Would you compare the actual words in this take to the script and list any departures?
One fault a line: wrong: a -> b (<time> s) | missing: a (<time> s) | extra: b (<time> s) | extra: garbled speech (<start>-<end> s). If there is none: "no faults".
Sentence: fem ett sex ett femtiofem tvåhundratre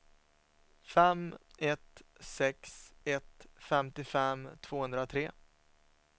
no faults